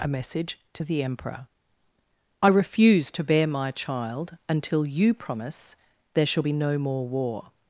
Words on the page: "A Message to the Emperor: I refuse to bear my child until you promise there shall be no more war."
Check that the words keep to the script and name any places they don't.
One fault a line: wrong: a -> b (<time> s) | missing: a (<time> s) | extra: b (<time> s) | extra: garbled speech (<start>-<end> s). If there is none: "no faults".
no faults